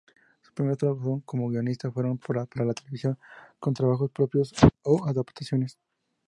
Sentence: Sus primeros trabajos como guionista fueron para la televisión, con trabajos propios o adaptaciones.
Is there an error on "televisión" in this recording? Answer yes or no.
no